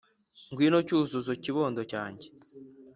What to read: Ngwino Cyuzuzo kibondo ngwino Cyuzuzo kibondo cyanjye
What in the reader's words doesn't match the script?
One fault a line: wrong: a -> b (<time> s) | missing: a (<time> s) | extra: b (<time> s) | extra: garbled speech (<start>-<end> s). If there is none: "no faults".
missing: ngwino Cyuzuzo kibondo (1.8 s)